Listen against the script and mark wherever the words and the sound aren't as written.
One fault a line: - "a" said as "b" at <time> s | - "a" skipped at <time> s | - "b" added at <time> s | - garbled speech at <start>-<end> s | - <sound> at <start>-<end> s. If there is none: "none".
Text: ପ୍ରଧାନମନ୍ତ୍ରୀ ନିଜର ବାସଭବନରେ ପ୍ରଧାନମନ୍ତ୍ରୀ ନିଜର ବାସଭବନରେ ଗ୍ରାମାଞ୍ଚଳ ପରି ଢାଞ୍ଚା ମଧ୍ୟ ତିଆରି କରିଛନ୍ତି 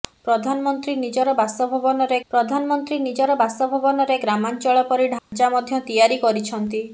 - dropout at 5.2-5.3 s